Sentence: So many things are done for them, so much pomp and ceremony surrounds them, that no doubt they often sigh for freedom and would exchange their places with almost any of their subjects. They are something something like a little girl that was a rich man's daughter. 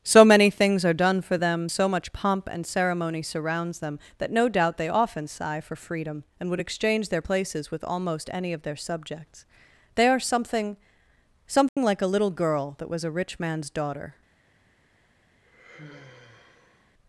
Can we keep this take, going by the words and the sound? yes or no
no